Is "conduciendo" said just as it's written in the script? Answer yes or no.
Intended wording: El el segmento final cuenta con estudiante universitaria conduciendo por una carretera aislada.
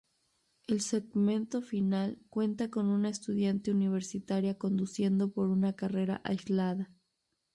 yes